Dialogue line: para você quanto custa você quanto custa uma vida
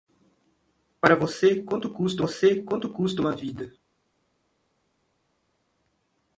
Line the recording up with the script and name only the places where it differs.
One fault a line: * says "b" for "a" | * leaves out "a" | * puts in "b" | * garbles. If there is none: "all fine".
all fine